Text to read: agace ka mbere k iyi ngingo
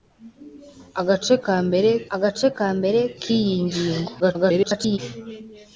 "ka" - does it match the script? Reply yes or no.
yes